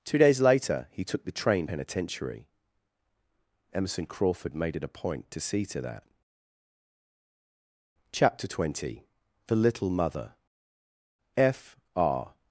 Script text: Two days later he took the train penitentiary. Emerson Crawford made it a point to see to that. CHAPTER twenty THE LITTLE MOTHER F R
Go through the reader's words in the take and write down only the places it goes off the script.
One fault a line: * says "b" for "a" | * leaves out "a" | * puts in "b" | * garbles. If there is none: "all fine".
all fine